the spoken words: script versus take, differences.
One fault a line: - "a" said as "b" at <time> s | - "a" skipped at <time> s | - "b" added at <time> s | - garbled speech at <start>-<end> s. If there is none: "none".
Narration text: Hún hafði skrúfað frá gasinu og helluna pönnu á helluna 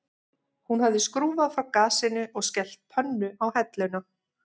- "helluna" said as "skellt" at 2.5 s